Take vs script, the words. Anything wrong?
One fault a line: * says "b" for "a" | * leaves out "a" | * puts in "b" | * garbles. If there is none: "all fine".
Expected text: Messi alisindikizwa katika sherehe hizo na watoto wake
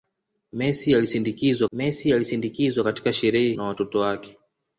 * puts in "messi alisindikizwa"
* leaves out "hizo"